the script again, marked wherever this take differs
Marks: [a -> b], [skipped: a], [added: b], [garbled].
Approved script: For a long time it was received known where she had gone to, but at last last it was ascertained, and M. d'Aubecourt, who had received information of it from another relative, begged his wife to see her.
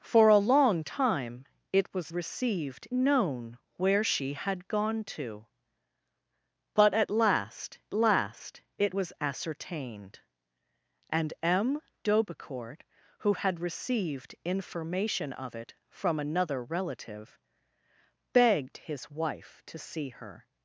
For a long time it was received known where she had gone to, but at last last it was ascertained, and M. d'Aubecourt, who had received information of it from another relative, begged his wife to see her.